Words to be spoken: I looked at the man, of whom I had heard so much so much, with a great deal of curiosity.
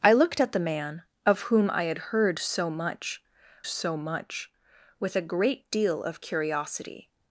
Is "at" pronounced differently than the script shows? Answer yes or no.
no